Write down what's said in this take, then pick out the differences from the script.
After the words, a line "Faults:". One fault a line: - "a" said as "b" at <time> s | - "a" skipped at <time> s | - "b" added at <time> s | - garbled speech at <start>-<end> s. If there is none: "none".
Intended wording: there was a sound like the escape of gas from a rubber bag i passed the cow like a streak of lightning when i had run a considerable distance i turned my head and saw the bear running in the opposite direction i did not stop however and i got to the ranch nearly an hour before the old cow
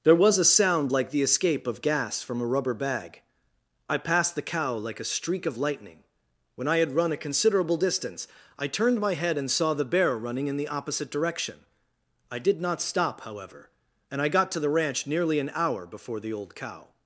there was a sound like the escape of gas from a rubber bag i passed the cow like a streak of lightning when i had run a considerable distance i turned my head and saw the bear running in the opposite direction i did not stop however and i got to the ranch nearly an hour before the old cow
Faults:
none